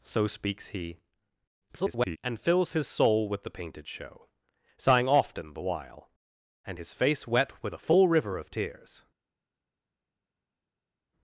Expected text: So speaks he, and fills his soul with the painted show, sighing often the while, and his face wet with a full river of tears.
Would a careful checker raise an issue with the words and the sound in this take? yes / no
yes